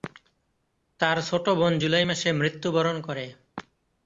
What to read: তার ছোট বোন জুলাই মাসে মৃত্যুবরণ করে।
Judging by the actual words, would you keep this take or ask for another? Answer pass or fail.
pass